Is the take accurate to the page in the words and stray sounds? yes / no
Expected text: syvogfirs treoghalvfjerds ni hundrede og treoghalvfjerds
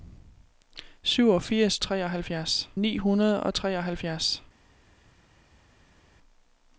yes